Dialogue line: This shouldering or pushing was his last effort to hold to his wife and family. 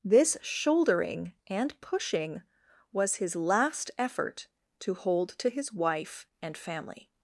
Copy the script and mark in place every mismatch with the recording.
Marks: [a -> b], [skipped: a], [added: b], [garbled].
This shouldering [or -> and] pushing was his last effort to hold to his wife and family.